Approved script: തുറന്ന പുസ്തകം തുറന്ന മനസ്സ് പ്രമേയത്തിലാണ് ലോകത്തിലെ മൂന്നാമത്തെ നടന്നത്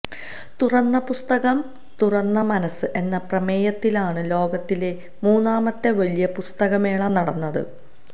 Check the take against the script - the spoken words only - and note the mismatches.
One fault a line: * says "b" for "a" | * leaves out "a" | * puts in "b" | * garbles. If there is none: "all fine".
* puts in "എന്ന"
* puts in "വലിയ പുസ്തകമേള"